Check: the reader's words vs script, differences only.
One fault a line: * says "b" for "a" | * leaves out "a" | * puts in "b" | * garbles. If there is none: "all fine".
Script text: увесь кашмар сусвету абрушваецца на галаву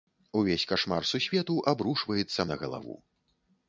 all fine